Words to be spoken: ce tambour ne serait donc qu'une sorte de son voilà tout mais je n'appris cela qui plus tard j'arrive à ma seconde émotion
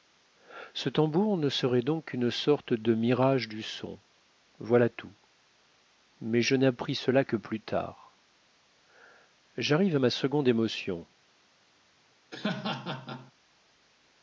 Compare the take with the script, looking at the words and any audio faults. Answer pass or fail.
fail